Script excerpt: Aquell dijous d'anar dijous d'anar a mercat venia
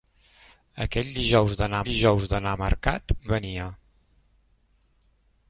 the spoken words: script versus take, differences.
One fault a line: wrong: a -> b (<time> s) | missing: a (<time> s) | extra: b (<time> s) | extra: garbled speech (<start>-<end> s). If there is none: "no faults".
no faults